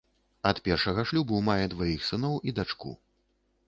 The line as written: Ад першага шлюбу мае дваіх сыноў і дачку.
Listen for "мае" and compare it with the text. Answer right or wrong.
right